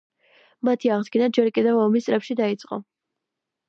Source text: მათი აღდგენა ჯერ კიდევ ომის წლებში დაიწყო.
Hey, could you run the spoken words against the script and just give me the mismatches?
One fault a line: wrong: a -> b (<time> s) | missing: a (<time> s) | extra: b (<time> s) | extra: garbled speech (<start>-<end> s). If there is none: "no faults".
no faults